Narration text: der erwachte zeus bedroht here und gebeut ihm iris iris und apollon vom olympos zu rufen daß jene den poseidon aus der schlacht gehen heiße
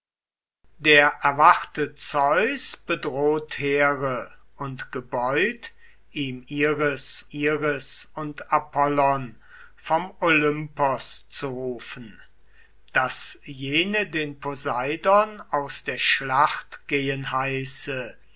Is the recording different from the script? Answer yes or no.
no